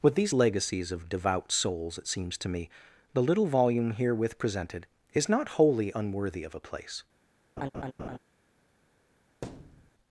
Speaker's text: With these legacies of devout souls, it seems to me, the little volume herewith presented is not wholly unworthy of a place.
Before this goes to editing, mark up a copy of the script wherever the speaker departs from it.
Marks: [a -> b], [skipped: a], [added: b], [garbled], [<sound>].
With these legacies of devout souls, it seems to me, the little volume herewith presented is not wholly unworthy of a place. [laugh] [thud]